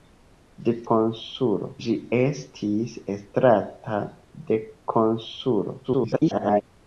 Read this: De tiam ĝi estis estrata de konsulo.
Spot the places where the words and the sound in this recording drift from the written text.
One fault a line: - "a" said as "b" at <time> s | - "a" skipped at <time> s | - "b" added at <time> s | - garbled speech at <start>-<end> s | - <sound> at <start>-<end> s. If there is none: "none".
- "tiam" said as "konsulo" at 0.9 s
- garbled speech at 5.8-6.6 s